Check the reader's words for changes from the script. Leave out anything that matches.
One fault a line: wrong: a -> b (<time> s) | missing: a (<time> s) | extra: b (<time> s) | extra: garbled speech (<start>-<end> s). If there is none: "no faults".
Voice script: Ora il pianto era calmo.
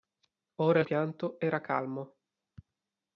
no faults